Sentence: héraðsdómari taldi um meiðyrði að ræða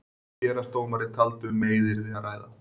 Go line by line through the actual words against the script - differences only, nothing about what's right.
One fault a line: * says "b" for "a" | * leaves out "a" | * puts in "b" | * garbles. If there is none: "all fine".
all fine